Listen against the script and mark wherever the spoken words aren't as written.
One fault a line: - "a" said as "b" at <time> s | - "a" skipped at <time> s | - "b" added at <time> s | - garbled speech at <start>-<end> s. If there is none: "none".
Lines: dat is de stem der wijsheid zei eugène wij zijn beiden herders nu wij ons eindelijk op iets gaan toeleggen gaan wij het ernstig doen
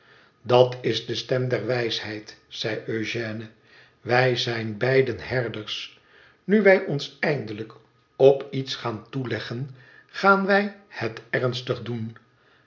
none